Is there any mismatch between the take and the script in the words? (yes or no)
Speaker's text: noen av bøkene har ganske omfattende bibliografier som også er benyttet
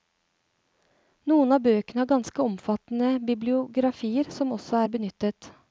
no